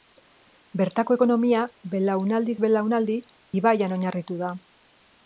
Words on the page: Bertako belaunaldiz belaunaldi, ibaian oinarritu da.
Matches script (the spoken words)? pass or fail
fail